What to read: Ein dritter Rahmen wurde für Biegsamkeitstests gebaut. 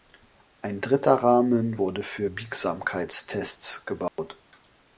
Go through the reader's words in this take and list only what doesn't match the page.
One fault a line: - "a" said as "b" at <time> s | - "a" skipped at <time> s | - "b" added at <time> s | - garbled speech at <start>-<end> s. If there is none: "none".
none